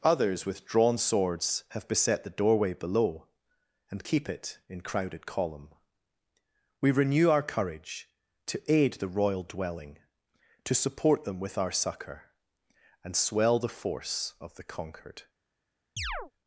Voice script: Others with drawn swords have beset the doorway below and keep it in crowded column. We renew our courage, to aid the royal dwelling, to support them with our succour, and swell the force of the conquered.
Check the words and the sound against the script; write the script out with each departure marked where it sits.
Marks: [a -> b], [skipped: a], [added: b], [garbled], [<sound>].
Others with drawn swords have beset the doorway below and keep it in crowded column. We renew our courage, to aid the royal dwelling, to support them with our succour, and swell the force of the conquered. [chirp]